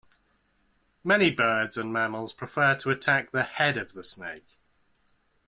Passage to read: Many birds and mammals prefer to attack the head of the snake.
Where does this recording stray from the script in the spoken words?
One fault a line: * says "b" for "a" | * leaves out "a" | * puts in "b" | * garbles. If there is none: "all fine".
all fine